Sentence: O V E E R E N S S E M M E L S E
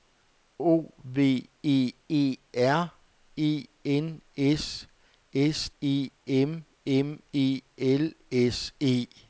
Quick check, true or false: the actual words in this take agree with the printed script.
true